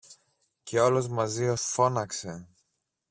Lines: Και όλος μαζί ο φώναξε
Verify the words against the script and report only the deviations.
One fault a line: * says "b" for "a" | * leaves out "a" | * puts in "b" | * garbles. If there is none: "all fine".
all fine